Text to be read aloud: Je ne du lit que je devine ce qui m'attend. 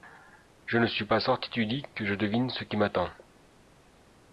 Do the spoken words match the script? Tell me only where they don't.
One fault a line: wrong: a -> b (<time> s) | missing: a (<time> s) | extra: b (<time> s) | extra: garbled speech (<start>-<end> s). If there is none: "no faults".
extra: suis pas sorti (0.9 s)